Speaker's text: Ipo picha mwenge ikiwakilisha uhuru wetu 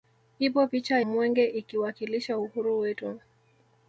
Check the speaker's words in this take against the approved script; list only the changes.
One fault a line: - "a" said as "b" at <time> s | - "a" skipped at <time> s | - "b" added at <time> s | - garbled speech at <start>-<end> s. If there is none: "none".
none